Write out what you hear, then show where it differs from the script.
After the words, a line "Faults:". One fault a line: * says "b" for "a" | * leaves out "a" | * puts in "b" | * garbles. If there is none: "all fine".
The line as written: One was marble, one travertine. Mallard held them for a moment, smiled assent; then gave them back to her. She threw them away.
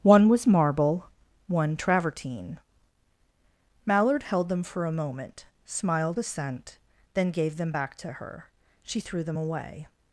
One was marble, one travertine. Mallard held them for a moment, smiled assent; then gave them back to her. She threw them away.
Faults:
all fine